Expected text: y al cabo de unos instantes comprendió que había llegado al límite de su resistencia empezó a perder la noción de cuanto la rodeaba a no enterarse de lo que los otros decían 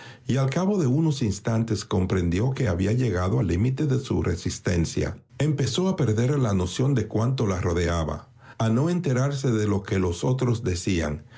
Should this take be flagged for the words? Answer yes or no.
no